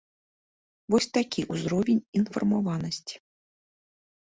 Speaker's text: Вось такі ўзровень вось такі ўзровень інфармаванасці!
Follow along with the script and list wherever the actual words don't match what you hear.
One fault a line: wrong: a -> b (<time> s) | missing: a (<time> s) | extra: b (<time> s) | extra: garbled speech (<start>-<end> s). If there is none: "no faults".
missing: вось такі ўзровень (2.0 s)